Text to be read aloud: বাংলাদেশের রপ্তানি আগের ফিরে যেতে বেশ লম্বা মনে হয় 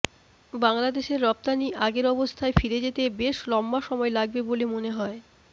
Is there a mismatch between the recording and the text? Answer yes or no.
yes